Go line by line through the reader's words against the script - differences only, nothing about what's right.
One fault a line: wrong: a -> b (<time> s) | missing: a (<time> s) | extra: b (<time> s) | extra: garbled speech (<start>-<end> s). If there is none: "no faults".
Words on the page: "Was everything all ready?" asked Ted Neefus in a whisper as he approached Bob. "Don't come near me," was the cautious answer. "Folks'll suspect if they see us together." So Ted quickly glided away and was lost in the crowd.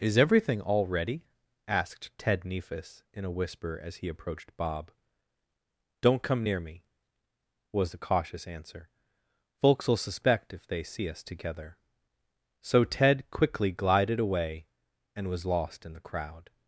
wrong: Was -> Is (0.0 s)